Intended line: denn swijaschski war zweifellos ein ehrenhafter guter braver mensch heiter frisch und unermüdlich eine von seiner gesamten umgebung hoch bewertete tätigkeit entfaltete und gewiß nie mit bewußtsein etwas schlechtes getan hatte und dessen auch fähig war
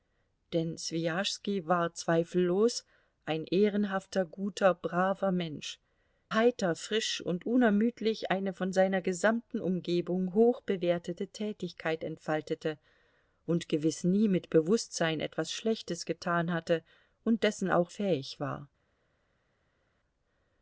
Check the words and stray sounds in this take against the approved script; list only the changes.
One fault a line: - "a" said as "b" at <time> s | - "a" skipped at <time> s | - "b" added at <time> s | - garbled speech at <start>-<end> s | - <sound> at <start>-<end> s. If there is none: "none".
none